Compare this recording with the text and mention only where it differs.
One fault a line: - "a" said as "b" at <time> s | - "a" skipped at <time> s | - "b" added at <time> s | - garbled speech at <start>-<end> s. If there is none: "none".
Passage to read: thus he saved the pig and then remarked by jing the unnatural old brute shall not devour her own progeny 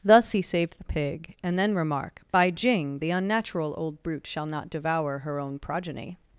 - "remarked" said as "remark" at 1.7 s